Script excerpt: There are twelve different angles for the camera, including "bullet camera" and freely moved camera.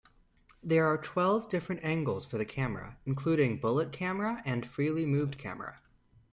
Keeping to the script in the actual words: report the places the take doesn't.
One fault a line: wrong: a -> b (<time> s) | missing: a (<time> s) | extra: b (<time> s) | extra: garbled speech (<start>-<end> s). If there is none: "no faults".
no faults